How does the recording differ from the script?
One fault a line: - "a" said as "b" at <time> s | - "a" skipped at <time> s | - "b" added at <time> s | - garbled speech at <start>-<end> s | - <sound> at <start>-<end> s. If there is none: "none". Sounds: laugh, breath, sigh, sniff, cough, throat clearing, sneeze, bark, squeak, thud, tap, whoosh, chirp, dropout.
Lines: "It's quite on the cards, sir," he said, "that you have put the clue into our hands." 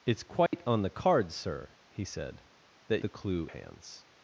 - dropout at 0.5-0.5 s
- "you have put" skipped at 3.0 s
- "into our" skipped at 3.5 s